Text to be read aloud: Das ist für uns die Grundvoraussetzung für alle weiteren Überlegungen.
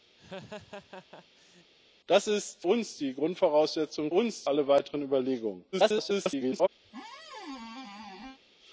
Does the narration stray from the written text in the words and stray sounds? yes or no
yes